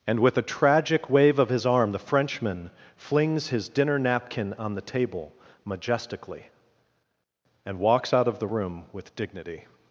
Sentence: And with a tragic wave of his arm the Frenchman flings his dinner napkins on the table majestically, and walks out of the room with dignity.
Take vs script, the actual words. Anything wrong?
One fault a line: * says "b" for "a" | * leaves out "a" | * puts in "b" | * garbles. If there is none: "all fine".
* says "napkin" for "napkins"